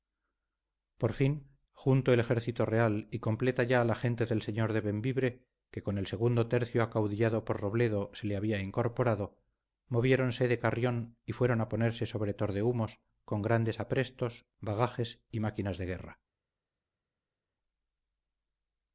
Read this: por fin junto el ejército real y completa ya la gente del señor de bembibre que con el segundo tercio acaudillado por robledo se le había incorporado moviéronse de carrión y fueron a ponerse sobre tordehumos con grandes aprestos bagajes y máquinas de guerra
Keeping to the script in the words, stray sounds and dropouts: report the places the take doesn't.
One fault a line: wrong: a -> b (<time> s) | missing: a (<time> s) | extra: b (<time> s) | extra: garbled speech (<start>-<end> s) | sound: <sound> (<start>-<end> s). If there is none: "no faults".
no faults